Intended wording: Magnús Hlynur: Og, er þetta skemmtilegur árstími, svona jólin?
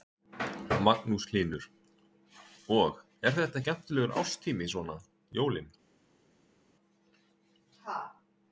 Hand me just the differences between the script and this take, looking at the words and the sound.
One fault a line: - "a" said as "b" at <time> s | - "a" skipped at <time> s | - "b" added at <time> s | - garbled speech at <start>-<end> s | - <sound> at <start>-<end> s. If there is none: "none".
none